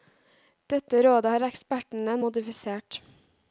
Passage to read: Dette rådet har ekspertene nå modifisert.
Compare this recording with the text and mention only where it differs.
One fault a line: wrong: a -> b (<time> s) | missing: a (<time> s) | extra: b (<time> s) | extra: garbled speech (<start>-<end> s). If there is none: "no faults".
missing: nå (2.2 s)